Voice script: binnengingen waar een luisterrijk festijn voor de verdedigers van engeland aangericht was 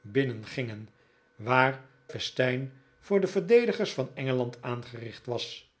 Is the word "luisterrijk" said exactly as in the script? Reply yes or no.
no